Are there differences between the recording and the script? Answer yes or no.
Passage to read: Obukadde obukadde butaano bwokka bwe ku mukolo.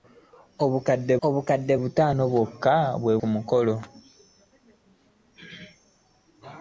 no